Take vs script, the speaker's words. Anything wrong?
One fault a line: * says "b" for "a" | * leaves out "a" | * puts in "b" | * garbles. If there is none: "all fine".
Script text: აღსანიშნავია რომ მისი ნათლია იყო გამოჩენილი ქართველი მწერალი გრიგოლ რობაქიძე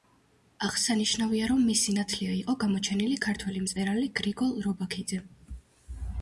all fine